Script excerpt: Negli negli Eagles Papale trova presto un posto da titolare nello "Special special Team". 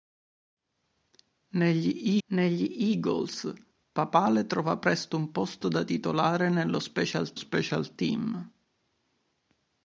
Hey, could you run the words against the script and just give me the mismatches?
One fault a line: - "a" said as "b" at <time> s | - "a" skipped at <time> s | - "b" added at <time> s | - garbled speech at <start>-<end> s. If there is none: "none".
none